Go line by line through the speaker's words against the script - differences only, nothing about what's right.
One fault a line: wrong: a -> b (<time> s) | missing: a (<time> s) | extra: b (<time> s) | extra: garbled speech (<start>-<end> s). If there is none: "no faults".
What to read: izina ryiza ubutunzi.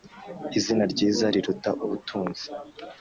extra: riruta (1.3 s)